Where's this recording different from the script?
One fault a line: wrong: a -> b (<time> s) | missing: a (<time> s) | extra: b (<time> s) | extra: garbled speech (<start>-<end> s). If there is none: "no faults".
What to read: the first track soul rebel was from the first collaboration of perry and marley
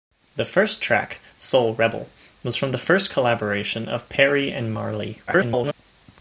extra: garbled speech (5.3-5.7 s)